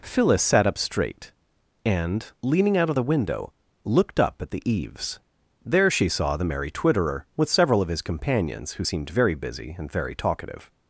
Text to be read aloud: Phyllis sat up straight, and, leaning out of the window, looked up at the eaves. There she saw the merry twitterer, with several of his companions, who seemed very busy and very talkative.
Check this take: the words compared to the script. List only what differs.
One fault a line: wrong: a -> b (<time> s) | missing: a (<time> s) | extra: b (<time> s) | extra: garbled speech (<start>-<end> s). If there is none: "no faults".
no faults